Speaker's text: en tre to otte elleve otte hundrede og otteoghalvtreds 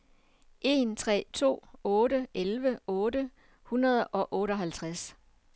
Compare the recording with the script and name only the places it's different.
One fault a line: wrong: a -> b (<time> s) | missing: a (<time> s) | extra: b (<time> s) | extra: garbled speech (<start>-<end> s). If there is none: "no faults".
no faults